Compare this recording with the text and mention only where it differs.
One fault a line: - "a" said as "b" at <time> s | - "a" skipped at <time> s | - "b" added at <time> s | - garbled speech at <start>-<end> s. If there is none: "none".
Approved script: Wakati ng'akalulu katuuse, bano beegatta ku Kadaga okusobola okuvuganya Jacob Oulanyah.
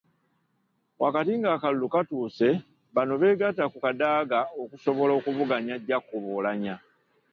none